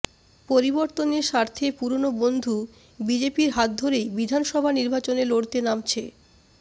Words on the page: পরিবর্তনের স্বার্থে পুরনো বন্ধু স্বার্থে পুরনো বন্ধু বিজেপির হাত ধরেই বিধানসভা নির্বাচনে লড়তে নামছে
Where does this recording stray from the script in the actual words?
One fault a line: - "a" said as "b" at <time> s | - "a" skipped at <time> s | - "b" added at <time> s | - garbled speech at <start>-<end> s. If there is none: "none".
- "স্বার্থে পুরনো বন্ধু" skipped at 2.5 s